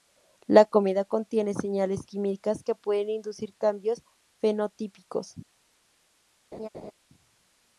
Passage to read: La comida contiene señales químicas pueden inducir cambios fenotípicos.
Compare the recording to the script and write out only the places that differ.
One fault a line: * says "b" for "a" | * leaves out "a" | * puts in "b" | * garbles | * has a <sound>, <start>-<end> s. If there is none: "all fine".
* puts in "que"
* has a laugh, 6.5-6.9 s